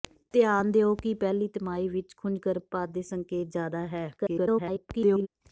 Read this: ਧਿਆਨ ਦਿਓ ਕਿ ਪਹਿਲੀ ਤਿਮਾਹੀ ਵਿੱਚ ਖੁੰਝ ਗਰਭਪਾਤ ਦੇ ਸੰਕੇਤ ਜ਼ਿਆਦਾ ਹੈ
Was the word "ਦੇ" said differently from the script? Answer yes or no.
no